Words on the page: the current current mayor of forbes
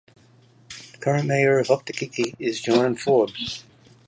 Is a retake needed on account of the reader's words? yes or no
yes